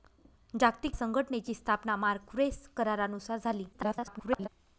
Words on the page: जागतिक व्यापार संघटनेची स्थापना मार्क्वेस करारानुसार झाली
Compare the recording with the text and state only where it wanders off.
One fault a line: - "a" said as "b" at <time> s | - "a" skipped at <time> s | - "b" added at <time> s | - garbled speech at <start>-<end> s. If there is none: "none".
- "व्यापार" skipped at 0.9 s
- garbled speech at 3.7-4.5 s